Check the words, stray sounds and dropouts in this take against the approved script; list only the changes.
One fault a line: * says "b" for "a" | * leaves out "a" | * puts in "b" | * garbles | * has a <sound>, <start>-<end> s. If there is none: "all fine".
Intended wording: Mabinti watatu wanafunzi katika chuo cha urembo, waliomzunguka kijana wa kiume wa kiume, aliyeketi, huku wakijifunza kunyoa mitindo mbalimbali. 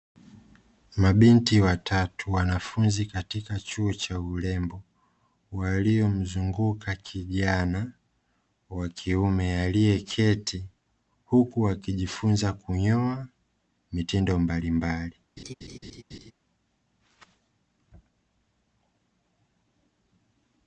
* leaves out "wa kiume"
* has a laugh, 15.4-16.3 s